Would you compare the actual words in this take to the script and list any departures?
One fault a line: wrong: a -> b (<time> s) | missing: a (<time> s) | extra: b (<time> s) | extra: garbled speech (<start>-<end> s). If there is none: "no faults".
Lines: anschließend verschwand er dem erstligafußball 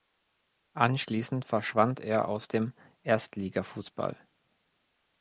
extra: aus (2.3 s)